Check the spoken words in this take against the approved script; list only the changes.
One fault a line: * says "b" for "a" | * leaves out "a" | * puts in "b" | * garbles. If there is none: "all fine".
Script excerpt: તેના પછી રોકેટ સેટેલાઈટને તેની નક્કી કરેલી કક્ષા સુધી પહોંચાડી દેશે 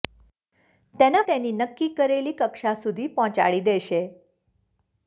* leaves out "પછી રોકેટ સેટેલાઈટને"